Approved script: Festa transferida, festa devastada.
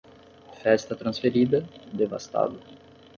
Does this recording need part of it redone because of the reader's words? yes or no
yes